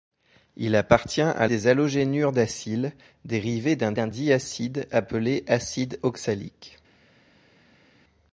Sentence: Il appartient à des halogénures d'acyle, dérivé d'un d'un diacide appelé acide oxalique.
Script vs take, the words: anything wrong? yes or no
no